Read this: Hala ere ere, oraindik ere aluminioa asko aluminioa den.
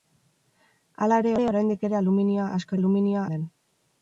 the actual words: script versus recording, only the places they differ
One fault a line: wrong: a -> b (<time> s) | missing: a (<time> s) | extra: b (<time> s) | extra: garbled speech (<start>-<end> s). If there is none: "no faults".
no faults